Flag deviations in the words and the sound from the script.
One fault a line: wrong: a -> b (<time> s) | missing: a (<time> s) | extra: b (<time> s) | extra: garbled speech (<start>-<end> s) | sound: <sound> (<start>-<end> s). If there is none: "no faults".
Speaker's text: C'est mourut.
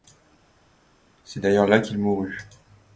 extra: d'ailleurs là qu'il (1.4 s)